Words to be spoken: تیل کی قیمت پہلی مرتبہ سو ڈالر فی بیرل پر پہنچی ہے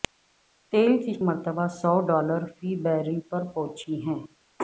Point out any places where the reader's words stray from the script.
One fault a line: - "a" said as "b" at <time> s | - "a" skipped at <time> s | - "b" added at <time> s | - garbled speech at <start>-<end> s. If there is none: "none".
- "قیمت پہلی" skipped at 1.1 s